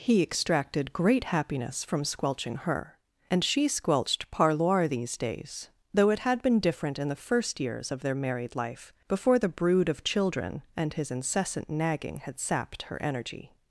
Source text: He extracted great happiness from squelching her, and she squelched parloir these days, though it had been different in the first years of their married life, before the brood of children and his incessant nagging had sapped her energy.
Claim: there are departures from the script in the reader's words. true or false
false